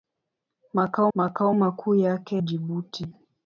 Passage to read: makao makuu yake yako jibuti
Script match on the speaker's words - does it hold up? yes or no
no